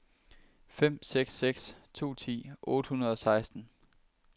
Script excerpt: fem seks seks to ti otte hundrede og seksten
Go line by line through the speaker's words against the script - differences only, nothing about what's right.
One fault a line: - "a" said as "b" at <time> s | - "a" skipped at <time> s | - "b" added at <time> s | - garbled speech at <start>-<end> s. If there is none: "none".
none